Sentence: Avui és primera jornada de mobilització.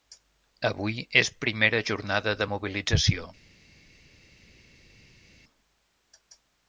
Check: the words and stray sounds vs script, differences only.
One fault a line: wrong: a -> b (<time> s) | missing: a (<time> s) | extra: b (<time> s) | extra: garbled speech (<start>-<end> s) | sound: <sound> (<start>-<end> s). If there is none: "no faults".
no faults